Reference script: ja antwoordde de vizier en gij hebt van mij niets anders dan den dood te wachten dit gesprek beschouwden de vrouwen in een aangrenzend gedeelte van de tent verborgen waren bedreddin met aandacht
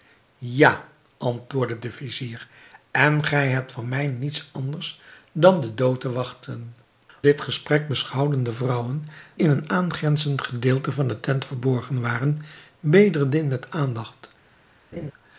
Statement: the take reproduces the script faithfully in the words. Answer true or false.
true